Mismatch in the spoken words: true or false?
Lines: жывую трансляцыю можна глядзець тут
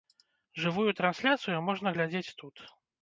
false